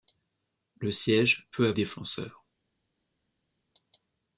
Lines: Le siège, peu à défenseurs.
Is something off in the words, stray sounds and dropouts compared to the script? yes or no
no